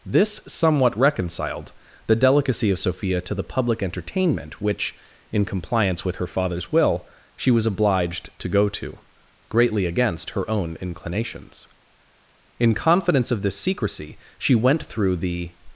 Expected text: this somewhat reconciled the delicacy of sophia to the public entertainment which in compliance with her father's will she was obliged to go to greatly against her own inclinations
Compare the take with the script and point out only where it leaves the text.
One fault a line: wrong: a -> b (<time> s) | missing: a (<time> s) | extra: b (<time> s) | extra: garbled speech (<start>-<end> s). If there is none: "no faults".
extra: in confidence of this secrecy she went through the (12.6 s)